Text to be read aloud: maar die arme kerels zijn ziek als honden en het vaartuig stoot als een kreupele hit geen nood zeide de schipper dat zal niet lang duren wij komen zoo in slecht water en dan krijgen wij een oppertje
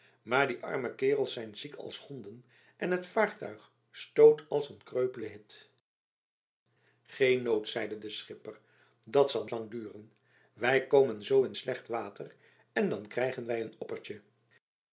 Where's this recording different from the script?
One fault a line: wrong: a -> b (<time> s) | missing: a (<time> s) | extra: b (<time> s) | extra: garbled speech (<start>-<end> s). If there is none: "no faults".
missing: niet (9.5 s)